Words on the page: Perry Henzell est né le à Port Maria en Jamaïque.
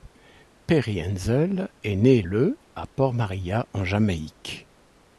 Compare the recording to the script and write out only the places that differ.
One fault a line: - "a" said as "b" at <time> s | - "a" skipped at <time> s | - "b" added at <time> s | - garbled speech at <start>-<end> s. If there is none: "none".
none